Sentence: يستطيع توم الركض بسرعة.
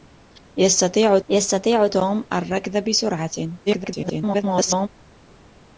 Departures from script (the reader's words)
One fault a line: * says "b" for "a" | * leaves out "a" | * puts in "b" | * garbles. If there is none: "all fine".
* puts in "يستطيع"
* garbles